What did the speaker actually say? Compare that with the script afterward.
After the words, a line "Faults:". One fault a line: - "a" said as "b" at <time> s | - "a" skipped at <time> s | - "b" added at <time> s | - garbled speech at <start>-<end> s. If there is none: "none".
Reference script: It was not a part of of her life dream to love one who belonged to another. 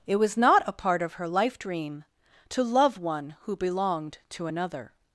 It was not a part of her life dream to love one who belonged to another.
Faults:
- "of" skipped at 1.1 s